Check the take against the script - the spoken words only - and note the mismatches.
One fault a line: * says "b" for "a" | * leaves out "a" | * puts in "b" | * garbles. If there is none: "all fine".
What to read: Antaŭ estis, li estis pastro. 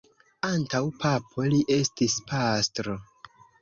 * says "papo" for "estis"